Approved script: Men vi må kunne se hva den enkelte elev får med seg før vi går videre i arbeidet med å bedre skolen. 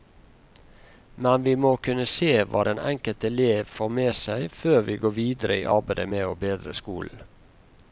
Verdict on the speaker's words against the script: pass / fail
pass